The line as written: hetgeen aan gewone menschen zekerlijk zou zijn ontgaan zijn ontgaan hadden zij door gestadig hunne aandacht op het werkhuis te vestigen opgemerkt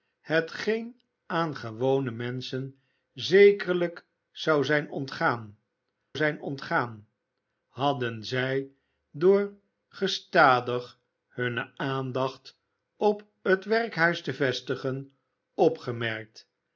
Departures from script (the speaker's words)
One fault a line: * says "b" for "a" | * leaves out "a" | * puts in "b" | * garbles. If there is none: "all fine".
all fine